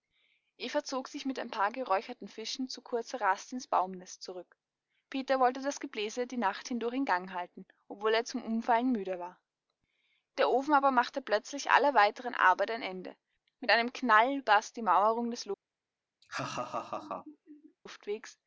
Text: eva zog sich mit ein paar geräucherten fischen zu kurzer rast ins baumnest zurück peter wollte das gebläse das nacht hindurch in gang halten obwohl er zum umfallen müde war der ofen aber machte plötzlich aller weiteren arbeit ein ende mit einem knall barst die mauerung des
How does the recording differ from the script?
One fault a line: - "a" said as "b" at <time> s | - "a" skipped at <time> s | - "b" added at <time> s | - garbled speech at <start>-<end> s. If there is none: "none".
- "das" said as "die" at 6.3 s